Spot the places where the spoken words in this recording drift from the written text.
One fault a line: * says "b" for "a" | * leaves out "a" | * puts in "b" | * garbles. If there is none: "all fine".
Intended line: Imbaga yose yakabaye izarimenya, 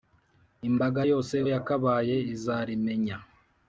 all fine